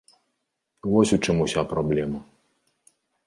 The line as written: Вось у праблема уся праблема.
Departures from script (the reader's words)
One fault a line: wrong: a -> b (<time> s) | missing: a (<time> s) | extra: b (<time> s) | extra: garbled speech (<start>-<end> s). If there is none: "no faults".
wrong: праблема -> чым (1.2 s)